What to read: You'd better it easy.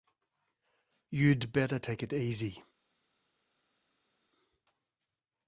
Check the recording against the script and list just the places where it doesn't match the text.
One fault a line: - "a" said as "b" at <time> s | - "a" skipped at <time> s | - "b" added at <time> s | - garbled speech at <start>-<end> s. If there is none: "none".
- "take" added at 1.8 s